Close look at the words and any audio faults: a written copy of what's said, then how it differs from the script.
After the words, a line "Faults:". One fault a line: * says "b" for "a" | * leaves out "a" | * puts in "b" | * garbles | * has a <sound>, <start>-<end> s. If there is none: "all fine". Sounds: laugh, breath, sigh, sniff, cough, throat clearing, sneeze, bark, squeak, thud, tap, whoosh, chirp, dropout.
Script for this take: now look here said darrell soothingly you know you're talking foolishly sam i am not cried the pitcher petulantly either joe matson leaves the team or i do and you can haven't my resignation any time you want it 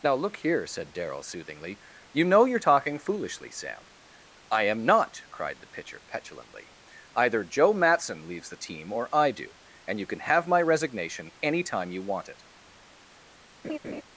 now look here said darrell soothingly you know you're talking foolishly sam i am not cried the pitcher petulantly either joe matson leaves the team or i do and you can have my resignation any time you want it
Faults:
* says "have" for "haven't"
* has a laugh, 13.6-14.0 s